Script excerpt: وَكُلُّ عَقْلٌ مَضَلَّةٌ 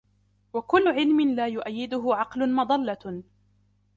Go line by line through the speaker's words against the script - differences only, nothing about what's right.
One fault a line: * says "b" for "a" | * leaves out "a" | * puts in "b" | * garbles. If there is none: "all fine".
* puts in "عِلْمٍ لَا يُؤَيِّدُهُ"